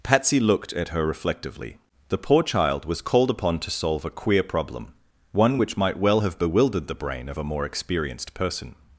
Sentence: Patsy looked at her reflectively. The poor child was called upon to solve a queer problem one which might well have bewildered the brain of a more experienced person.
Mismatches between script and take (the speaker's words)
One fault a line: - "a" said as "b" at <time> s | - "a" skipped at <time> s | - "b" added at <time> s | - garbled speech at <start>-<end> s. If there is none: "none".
none